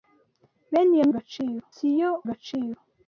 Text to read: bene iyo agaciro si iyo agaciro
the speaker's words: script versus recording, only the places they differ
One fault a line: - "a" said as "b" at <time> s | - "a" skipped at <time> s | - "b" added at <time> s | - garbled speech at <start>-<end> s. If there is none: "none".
none